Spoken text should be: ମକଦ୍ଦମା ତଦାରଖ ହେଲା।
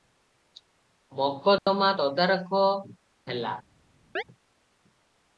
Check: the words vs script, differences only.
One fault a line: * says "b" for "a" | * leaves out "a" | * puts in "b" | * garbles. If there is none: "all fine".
all fine